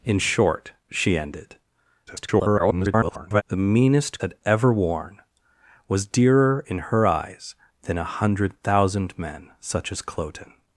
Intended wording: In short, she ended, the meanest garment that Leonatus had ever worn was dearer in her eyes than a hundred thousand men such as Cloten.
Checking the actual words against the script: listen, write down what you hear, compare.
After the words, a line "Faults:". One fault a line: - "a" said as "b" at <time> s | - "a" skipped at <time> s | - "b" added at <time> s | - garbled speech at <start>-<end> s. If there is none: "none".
In short, she ended, [garbled] the meanest had ever worn was dearer in her eyes than a hundred thousand men such as Cloten.
Faults:
- garbled speech at 2.1-3.4 s
- "garment that Leonatus" skipped at 4.2 s